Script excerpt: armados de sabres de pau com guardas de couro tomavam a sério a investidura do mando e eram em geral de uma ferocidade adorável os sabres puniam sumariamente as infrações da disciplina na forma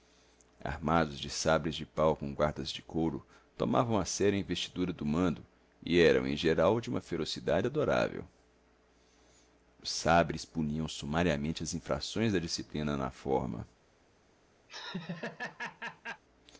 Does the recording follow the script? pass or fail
pass